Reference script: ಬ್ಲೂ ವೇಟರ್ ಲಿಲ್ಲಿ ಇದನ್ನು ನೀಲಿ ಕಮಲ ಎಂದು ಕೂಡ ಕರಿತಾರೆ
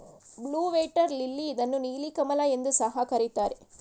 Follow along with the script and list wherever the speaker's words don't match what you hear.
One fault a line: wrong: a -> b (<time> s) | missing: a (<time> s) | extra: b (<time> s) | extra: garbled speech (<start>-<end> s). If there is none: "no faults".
wrong: ಕೂಡ -> ಸಹ (2.7 s)